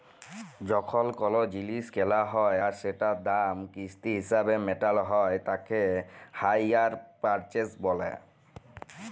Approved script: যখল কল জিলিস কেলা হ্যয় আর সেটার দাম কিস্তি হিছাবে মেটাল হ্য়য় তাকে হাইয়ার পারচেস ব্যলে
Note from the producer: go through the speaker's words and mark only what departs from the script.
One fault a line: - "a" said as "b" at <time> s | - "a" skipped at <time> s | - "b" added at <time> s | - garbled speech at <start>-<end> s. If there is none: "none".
none